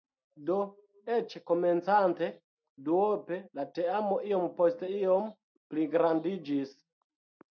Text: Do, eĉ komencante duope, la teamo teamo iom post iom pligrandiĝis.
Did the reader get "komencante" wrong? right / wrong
right